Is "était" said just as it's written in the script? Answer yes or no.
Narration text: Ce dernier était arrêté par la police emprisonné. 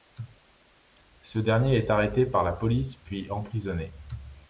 no